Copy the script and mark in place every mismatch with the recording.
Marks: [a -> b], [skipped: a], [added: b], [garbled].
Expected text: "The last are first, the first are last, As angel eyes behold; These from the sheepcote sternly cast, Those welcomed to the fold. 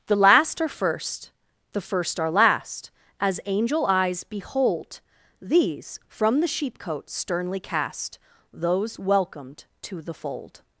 "The last are first, the first are last, As angel eyes behold; These from the sheepcote sternly cast, Those welcomed to the fold.